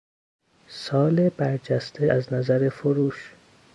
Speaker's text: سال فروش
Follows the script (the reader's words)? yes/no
no